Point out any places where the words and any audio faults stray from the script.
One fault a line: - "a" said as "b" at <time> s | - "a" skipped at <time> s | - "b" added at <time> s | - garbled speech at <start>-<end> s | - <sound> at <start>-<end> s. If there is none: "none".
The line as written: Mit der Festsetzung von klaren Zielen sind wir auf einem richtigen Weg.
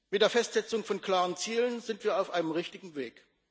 none